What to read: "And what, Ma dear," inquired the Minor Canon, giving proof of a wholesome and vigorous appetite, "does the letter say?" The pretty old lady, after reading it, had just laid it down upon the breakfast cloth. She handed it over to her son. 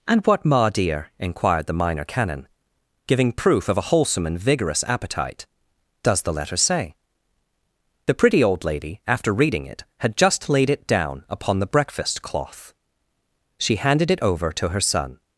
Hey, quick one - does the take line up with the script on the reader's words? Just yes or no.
yes